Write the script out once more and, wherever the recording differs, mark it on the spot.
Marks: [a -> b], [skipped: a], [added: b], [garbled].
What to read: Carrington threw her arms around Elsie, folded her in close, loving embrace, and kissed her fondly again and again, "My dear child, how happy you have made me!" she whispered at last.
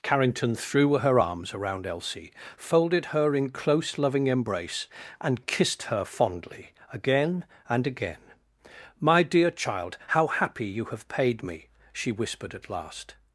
Carrington threw her arms around Elsie, folded her in close, loving embrace, and kissed her fondly again and again, "My dear child, how happy you have [made -> paid] me!" she whispered at last.